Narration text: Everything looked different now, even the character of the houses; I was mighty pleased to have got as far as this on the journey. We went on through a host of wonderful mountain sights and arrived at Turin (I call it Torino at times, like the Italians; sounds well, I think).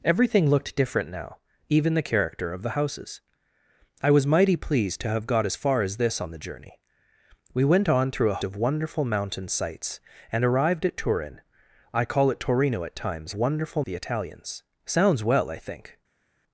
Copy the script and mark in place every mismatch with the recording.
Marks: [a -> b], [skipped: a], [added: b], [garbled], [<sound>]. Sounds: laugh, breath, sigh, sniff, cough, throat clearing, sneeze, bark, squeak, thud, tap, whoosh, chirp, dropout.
Everything looked different now, even the character of the houses; I was mighty pleased to have got as far as this on the journey. We went on through a [skipped: host] of wonderful mountain sights and arrived at Turin (I call it Torino at times, [like -> wonderful] the Italians; sounds well, I think).